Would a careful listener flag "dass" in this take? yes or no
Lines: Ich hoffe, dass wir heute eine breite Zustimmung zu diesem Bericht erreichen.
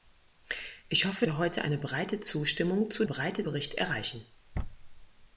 yes